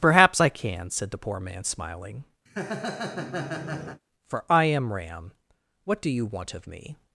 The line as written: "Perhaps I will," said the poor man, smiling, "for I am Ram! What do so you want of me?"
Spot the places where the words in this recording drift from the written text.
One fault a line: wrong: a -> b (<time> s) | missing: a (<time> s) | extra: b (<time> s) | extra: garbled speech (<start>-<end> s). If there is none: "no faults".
wrong: will -> can (0.5 s)
missing: so (6.1 s)